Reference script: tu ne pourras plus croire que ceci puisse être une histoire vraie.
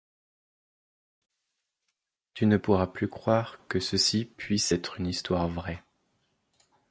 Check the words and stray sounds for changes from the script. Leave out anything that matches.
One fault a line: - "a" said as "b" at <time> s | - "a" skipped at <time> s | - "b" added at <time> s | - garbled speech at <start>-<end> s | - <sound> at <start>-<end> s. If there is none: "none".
none